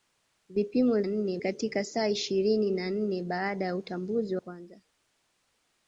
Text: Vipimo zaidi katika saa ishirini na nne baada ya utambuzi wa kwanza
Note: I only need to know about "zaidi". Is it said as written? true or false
false